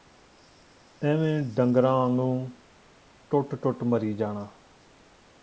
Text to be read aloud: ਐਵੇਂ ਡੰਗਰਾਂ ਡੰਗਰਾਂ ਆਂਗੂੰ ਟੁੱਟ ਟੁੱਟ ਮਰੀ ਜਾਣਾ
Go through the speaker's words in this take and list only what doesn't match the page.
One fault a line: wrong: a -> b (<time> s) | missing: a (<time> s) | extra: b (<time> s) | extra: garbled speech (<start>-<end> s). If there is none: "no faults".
missing: ਡੰਗਰਾਂ (1.9 s)